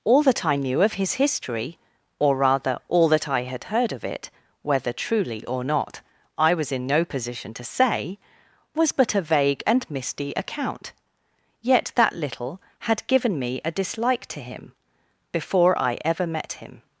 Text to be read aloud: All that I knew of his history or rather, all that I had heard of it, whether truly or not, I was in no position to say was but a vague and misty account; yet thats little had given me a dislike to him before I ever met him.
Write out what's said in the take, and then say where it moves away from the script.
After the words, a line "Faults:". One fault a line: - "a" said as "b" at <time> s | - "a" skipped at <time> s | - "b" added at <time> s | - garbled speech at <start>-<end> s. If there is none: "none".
All that I knew of his history or rather, all that I had heard of it, whether truly or not, I was in no position to say was but a vague and misty account; yet that little had given me a dislike to him before I ever met him.
Faults:
- "thats" said as "that" at 11.9 s